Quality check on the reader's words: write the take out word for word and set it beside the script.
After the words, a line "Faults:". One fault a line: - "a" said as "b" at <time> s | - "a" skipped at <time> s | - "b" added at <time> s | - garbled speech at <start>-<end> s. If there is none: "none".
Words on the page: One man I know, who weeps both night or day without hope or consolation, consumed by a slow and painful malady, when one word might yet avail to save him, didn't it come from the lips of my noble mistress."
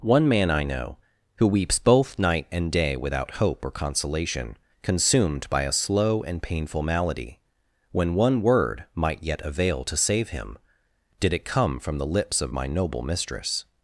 One man I know, who weeps both night and day without hope or consolation, consumed by a slow and painful malady, when one word might yet avail to save him, did it come from the lips of my noble mistress."
Faults:
- "or" said as "and" at 2.5 s
- "didn't" said as "did" at 11.2 s